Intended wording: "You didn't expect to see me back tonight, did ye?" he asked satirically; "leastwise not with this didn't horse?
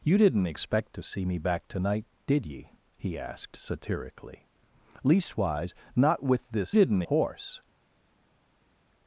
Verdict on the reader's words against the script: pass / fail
pass